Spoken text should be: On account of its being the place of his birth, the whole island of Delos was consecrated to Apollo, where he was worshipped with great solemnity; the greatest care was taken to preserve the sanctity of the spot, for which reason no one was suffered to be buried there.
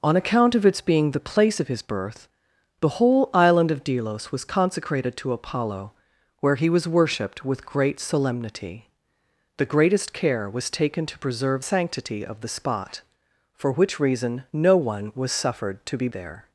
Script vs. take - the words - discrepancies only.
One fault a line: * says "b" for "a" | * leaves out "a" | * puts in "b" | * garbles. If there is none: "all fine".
* leaves out "the"
* leaves out "buried"